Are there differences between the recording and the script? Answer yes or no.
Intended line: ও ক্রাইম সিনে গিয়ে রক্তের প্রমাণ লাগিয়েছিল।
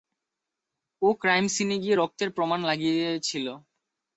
no